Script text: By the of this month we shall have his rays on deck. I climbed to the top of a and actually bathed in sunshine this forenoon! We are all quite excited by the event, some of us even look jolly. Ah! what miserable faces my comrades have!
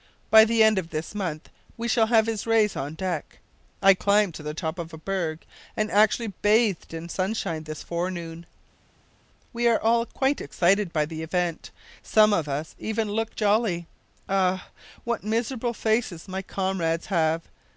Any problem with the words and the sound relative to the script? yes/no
yes